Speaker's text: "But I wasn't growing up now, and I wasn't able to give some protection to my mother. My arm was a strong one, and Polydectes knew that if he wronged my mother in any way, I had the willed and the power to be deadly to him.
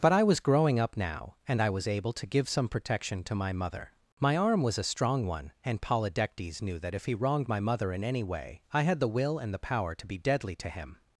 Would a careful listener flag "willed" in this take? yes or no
yes